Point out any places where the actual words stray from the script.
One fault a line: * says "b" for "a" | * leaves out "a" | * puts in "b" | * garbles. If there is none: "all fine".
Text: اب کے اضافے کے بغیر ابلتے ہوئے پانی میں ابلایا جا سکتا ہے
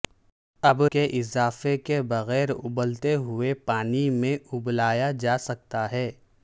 all fine